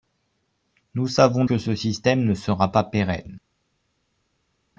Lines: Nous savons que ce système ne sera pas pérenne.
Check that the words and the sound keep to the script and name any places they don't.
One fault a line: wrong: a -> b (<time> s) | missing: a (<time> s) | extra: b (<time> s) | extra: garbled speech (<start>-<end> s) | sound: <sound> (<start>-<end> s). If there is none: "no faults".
no faults